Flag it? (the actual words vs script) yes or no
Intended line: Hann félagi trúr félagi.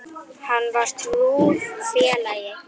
yes